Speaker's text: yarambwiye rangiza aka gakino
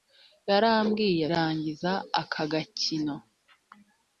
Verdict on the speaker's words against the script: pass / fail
pass